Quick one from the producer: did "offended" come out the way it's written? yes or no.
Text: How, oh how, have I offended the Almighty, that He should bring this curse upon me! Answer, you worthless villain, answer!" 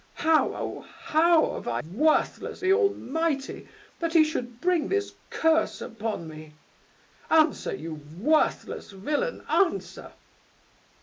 no